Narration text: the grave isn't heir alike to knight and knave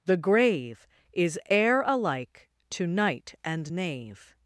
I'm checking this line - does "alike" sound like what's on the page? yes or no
yes